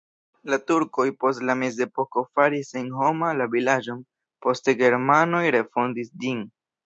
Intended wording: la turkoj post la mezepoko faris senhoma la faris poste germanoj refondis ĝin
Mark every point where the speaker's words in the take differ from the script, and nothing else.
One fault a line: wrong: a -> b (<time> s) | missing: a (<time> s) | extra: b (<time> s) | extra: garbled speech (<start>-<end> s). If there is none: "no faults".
wrong: faris -> vilaĝon (3.6 s)